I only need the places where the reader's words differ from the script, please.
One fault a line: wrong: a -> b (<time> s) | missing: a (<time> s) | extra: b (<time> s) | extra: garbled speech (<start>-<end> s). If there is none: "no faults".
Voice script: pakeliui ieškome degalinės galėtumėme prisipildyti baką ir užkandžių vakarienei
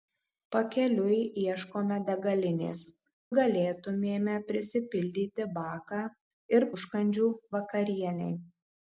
no faults